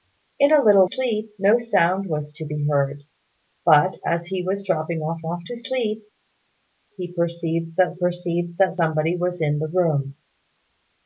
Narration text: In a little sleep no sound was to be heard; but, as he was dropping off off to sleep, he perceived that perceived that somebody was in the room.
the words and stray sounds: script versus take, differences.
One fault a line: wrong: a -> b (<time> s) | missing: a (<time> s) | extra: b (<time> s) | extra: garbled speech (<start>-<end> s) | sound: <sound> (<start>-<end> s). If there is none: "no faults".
no faults